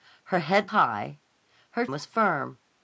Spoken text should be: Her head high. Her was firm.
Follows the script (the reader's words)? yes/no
yes